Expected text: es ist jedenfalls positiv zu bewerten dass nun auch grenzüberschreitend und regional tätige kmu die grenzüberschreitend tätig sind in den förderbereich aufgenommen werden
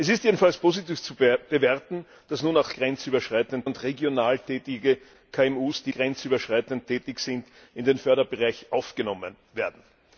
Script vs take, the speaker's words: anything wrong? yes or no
no